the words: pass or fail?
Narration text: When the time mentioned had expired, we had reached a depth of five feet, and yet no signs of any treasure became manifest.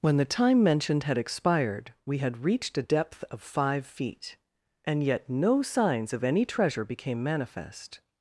pass